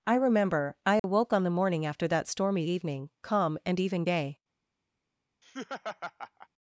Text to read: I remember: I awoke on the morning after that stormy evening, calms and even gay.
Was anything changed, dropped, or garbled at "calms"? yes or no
yes